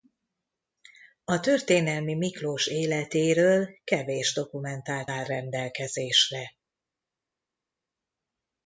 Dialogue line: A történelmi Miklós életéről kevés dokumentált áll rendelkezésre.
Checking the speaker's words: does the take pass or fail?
pass